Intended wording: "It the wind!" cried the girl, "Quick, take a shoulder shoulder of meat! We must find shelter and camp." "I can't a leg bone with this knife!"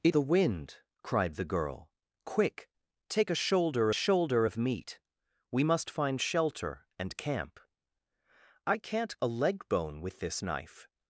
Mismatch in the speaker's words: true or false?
false